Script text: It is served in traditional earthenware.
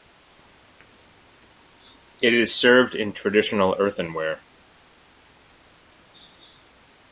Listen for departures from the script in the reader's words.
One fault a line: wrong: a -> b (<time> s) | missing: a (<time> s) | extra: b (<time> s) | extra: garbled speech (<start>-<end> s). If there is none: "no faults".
no faults